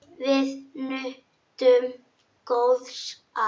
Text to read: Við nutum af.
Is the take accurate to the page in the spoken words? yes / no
no